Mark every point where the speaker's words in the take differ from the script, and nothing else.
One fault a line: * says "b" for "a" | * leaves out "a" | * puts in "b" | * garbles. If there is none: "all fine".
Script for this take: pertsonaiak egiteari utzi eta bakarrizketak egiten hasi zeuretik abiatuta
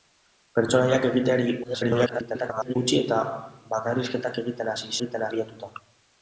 * garbles
* says "egiten" for "zeuretik"